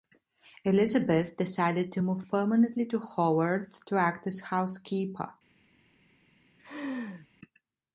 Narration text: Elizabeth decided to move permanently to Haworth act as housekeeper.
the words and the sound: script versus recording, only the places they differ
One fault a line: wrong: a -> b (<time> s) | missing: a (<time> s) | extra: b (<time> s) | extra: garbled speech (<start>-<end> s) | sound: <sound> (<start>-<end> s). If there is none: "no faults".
extra: to (3.8 s)
sound: laugh (6.6-7.3 s)